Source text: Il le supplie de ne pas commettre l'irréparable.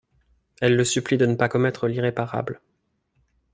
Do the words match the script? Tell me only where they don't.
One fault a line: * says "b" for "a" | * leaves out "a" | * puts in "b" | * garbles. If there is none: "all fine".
* says "Elle" for "Il"